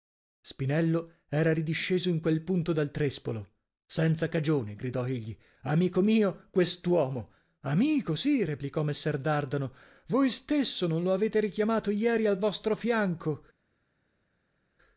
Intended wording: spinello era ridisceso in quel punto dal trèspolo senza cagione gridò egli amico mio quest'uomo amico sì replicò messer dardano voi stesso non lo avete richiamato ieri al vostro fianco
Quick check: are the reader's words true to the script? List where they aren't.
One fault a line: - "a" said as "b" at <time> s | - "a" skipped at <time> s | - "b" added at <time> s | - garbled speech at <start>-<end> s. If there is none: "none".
none